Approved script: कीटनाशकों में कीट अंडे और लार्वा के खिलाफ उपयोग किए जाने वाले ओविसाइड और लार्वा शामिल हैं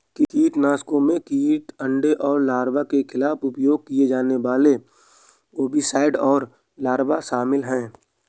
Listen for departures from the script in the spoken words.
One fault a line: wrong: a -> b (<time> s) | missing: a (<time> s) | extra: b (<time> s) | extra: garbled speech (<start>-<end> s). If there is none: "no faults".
no faults